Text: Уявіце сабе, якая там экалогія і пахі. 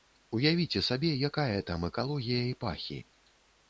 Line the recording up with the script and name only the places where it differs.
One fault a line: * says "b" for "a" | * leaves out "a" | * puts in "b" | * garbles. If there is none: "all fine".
all fine